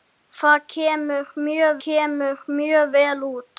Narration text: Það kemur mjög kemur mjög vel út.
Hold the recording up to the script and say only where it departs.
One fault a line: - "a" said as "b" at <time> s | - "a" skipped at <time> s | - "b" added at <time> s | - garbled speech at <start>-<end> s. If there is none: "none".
none